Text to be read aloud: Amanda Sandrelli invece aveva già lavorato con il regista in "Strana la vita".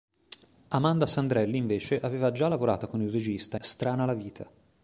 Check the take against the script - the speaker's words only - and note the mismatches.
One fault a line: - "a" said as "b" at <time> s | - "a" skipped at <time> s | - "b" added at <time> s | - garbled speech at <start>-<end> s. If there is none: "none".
- "in" skipped at 3.6 s